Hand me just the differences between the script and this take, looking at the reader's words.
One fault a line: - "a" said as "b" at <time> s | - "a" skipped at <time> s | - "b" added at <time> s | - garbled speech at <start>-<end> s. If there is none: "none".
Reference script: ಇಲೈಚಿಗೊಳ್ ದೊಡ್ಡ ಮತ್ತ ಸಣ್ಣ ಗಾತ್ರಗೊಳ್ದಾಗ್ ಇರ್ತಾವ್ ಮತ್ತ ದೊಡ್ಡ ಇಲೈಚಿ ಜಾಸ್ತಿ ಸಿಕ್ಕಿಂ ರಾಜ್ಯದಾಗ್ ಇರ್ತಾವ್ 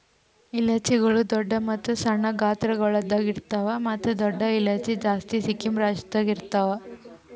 none